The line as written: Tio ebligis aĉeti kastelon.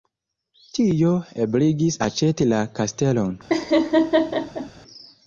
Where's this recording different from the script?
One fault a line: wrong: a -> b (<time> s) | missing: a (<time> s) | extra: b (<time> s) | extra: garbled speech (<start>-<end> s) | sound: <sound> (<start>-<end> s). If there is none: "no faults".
extra: la (2.5 s)
sound: laugh (3.5-4.7 s)